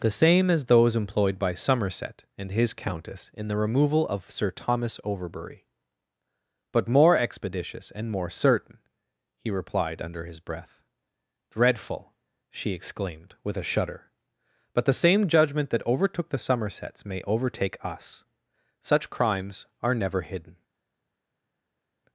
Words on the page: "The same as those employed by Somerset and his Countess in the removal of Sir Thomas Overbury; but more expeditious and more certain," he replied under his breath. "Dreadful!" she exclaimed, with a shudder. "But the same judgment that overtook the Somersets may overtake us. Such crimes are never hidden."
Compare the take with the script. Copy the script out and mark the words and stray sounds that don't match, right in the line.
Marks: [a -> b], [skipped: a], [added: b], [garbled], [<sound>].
"The same as those employed by Somerset and his Countess in the removal of Sir Thomas Overbury; but more expeditious and more certain," he replied under his breath. "Dreadful!" she exclaimed, with a shudder. "But the same judgment that overtook the Somersets may overtake us. Such crimes are never hidden."